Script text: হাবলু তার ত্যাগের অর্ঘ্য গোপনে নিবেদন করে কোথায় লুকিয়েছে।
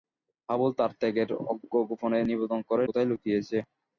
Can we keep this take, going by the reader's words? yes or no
yes